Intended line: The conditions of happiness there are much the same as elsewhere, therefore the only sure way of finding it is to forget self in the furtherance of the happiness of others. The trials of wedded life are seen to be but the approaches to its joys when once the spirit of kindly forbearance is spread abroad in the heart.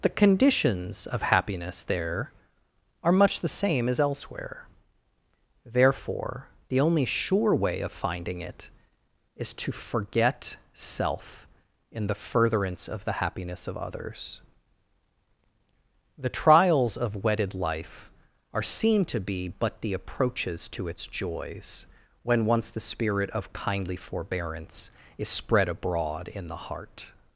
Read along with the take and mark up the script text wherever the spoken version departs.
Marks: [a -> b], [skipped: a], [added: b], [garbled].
The conditions of happiness there are much the same as elsewhere, therefore the only sure way of finding it is to forget self in the furtherance of the happiness of others. The trials of wedded life are seen to be but the approaches to its joys when once the spirit of kindly forbearance is spread abroad in the heart.